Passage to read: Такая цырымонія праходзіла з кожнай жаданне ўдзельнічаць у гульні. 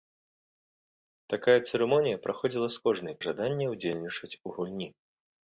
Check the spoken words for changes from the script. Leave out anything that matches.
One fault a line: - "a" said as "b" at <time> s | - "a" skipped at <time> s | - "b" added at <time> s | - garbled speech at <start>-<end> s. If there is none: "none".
none